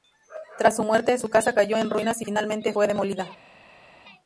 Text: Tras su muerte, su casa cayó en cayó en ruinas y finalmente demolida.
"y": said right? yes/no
yes